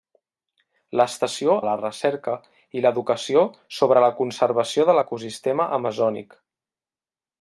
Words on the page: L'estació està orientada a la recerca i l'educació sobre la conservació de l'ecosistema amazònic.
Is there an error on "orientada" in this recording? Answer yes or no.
yes